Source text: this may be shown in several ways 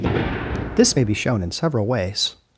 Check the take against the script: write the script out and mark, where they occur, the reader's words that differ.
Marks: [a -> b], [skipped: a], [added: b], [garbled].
this may be shown in several ways